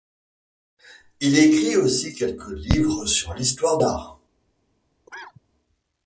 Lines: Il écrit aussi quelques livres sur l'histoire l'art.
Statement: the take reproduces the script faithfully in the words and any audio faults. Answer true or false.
false